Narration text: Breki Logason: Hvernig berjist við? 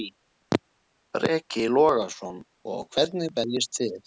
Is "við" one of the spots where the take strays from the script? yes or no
yes